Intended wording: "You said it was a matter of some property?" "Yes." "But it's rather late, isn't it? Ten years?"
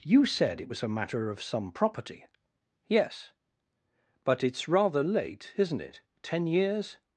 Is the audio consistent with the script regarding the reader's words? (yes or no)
yes